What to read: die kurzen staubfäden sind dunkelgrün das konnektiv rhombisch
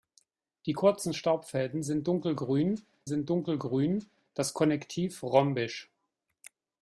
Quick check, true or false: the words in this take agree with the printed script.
false